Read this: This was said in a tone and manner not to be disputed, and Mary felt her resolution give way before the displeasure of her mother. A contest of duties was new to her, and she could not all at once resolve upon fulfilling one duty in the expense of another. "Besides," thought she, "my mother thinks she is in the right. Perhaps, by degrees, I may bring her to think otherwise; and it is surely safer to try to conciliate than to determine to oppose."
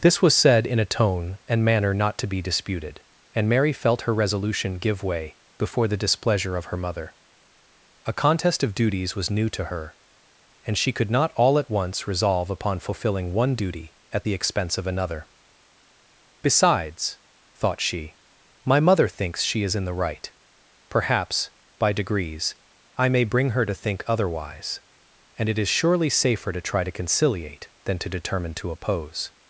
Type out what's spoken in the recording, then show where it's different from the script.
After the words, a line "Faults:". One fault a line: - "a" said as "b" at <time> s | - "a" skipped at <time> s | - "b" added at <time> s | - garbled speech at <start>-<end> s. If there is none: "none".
This was said in a tone and manner not to be disputed, and Mary felt her resolution give way before the displeasure of her mother. A contest of duties was new to her, and she could not all at once resolve upon fulfilling one duty at the expense of another. "Besides," thought she, "my mother thinks she is in the right. Perhaps, by degrees, I may bring her to think otherwise; and it is surely safer to try to conciliate than to determine to oppose."
Faults:
- "in" said as "at" at 14.1 s